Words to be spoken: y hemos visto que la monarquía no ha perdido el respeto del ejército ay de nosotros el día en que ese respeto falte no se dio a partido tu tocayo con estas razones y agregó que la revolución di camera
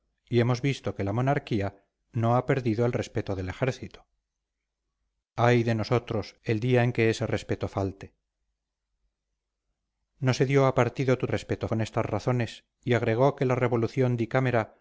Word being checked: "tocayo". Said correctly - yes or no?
no